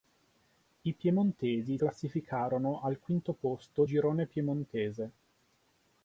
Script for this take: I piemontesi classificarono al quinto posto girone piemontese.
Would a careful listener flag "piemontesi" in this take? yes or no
no